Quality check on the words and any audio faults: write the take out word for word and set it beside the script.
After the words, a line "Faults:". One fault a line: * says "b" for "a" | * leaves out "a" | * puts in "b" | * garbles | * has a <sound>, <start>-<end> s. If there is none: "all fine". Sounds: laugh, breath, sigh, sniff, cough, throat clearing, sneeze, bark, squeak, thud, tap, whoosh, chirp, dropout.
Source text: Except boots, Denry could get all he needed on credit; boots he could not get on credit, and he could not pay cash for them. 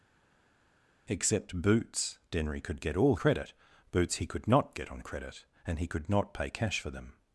Except boots, Denry could get all credit; boots he could not get on credit, and he could not pay cash for them.
Faults:
* leaves out "he needed on"